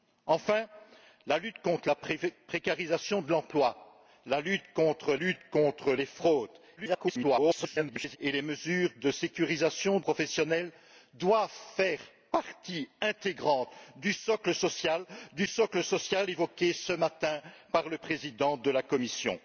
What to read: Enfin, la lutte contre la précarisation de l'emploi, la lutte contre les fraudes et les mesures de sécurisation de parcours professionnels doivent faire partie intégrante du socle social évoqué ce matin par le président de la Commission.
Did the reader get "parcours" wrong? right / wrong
wrong